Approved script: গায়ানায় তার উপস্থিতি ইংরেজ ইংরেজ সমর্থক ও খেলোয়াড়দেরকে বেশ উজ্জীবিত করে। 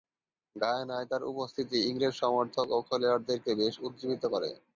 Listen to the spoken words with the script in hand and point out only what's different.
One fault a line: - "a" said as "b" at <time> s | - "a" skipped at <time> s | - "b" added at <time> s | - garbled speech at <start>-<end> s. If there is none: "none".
- "ইংরেজ" skipped at 2.1 s